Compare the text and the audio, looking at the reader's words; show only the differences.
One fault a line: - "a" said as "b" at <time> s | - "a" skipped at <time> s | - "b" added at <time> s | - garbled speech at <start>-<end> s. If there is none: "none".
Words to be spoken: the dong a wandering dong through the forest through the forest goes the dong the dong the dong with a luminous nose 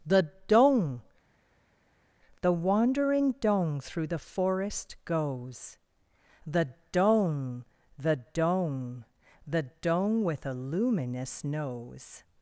- "a" said as "the" at 2.4 s
- "through the forest" skipped at 5.0 s